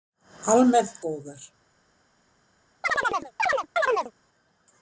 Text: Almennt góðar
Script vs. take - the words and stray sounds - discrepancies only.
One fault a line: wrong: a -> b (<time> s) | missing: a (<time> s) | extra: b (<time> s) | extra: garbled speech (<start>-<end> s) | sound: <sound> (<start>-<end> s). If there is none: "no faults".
sound: chirp (2.8-4.1 s)